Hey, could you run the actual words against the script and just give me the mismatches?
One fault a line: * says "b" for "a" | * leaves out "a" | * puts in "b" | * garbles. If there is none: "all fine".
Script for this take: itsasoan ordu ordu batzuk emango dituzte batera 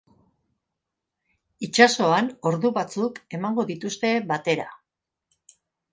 * leaves out "ordu"